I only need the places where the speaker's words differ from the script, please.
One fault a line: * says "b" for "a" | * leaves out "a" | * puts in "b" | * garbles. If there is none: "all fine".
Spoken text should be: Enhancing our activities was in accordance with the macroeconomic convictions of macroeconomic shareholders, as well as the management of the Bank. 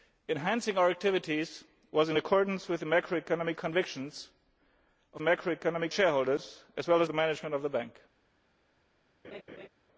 all fine